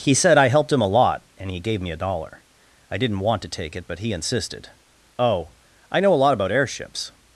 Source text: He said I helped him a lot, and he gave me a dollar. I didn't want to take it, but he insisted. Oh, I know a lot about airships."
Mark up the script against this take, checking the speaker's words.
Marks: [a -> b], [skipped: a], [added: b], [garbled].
He said I helped him a lot, and he gave me a dollar. I didn't want to take it, but he insisted. Oh, I know a lot about airships."